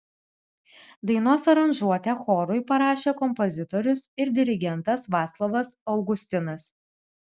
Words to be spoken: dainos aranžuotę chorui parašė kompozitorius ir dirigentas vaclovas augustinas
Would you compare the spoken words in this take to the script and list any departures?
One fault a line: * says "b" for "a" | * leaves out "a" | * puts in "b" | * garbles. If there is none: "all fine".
all fine